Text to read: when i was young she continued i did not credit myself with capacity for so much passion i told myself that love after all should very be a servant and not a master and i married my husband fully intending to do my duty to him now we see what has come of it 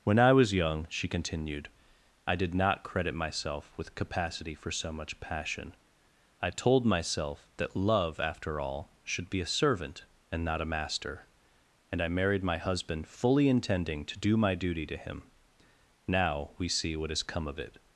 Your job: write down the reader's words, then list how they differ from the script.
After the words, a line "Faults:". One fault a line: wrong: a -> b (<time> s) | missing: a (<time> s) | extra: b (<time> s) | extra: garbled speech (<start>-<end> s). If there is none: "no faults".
when i was young she continued i did not credit myself with capacity for so much passion i told myself that love after all should be a servant and not a master and i married my husband fully intending to do my duty to him now we see what has come of it
Faults:
missing: very (9.3 s)